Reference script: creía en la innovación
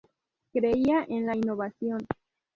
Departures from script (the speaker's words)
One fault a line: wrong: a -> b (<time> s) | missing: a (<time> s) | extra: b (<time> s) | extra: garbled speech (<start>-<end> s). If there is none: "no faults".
no faults